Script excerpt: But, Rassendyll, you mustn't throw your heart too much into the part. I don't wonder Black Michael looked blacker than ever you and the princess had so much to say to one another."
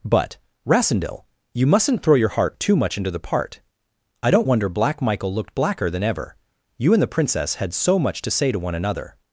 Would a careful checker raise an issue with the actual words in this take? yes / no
no